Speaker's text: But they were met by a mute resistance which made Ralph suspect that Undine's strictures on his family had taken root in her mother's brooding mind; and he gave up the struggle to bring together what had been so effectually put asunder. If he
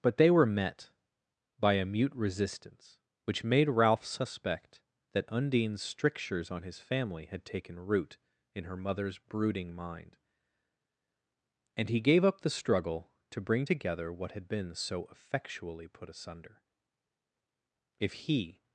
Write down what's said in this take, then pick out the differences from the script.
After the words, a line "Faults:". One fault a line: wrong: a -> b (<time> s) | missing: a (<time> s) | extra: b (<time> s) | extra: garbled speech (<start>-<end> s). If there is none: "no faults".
But they were met by a mute resistance which made Ralph suspect that Undine's strictures on his family had taken root in her mother's brooding mind; and he gave up the struggle to bring together what had been so effectually put asunder. If he
Faults:
no faults